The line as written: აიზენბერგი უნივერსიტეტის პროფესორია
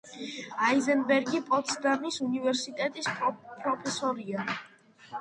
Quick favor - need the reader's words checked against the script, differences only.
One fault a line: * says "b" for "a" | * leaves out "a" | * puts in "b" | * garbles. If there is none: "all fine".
* puts in "პოტსდამის"